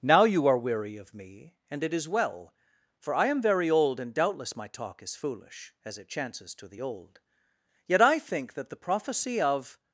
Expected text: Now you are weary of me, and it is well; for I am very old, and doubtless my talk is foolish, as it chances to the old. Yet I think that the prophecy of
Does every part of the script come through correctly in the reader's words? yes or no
yes